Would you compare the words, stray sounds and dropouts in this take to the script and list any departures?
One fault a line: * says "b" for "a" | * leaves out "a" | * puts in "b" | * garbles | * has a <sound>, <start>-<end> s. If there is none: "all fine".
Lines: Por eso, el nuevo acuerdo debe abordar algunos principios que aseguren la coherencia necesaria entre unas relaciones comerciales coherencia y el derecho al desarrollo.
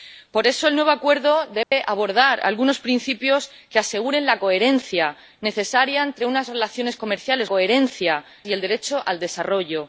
* has a dropout, 1.6-1.7 s